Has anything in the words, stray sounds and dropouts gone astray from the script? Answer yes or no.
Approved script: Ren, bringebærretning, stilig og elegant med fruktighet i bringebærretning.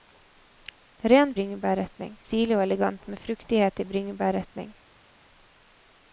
no